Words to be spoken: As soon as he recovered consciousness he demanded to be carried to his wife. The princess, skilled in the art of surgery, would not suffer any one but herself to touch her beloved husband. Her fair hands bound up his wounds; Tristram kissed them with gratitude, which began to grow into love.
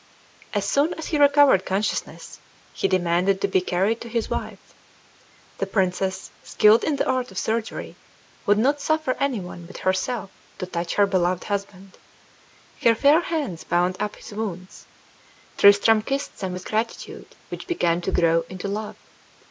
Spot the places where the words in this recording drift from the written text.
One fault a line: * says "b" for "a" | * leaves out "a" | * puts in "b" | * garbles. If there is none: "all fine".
all fine